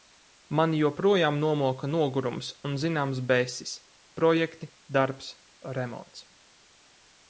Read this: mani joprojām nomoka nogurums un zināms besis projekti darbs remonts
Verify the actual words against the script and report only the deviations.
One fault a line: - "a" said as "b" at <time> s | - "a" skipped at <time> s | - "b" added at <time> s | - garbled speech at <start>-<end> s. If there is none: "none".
none